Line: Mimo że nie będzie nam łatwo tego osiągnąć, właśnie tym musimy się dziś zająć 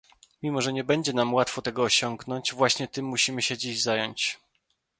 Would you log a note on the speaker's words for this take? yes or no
no